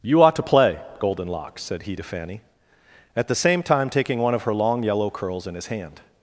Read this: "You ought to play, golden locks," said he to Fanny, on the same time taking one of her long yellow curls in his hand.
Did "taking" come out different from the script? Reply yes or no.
no